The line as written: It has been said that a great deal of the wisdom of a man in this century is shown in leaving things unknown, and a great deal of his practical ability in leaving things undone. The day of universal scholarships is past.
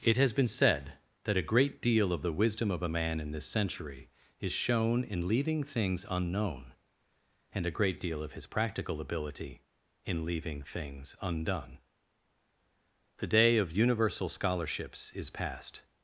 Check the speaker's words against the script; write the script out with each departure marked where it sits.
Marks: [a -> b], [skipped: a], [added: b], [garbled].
It has been said that a great deal of the wisdom of a man in this century is shown in leaving things unknown, and a great deal of his practical ability in leaving things undone. The day of universal scholarships is past.